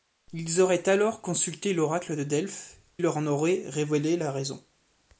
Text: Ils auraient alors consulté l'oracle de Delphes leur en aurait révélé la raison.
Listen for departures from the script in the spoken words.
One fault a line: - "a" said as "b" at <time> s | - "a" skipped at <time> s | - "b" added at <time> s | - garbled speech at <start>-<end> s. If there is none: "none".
none